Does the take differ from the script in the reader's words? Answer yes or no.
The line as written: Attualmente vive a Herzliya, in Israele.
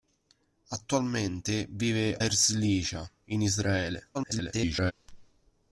yes